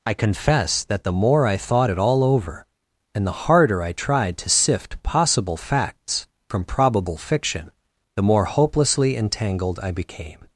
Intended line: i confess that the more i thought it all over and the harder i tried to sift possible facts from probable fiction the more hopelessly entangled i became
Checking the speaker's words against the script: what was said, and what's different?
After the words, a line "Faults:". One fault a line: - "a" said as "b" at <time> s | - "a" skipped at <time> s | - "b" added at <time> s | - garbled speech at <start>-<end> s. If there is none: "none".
i confess that the more i thought it all over and the harder i tried to sift possible facts from probable fiction the more hopelessly entangled i became
Faults:
none